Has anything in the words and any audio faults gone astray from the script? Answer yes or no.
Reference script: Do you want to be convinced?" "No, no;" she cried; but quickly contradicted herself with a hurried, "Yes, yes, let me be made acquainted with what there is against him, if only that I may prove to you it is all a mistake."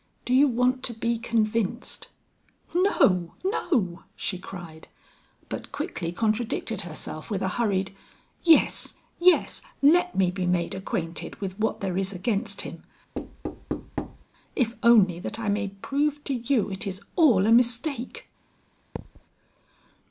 yes